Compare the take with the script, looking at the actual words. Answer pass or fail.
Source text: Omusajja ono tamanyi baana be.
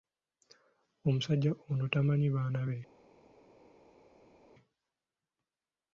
pass